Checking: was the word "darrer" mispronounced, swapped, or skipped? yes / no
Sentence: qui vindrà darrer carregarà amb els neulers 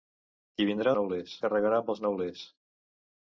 yes